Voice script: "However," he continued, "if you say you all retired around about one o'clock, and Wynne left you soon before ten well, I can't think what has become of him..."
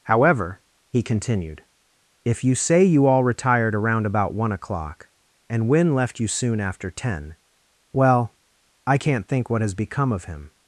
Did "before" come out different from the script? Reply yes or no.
yes